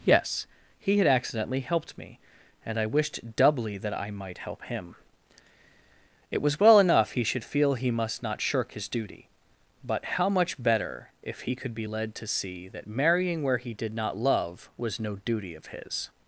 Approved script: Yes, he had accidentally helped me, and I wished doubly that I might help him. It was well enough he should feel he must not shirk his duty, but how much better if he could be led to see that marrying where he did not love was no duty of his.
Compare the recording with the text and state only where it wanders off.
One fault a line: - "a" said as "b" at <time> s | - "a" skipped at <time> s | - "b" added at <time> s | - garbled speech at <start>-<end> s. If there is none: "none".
none